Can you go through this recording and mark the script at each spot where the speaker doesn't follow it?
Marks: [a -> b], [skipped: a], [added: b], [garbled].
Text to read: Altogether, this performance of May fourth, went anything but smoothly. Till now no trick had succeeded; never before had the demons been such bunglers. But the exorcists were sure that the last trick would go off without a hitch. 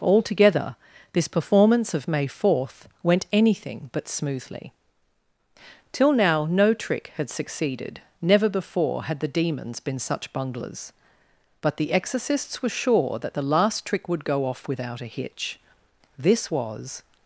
Altogether, this performance of May fourth, went anything but smoothly. Till now no trick had succeeded; never before had the demons been such bunglers. But the exorcists were sure that the last trick would go off without a hitch. [added: This was]